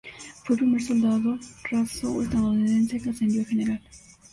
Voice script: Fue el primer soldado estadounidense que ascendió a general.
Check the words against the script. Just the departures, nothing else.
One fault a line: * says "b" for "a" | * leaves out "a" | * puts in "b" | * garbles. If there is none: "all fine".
* puts in "raso"